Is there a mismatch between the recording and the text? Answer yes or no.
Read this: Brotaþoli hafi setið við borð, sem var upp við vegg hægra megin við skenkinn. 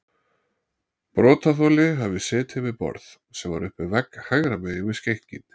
no